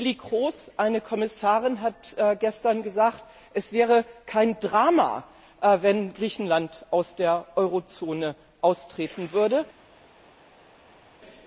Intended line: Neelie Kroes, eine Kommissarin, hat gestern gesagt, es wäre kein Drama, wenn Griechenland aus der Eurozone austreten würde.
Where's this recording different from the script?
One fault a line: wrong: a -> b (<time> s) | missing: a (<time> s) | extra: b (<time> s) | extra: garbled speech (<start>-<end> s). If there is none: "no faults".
no faults